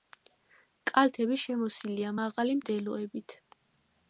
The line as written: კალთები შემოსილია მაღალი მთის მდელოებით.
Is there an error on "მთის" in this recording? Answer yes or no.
yes